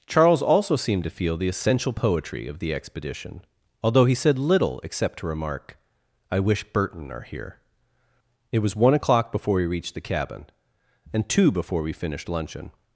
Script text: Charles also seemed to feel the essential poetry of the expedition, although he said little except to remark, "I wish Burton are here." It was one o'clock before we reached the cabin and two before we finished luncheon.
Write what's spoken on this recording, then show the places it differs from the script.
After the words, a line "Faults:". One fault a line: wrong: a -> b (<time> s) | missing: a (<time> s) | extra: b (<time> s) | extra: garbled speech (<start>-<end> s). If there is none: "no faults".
Charles also seemed to feel the essential poetry of the expedition, although he said little except to remark, "I wish Burton are here." It was one o'clock before we reached the cabin and two before we finished luncheon.
Faults:
no faults